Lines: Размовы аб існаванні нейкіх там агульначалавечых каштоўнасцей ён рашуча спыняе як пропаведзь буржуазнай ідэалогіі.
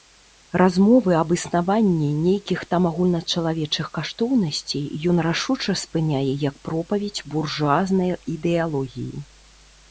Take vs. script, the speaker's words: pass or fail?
pass